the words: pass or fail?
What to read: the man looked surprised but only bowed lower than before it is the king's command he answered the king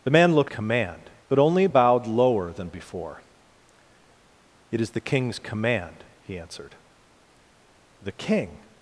fail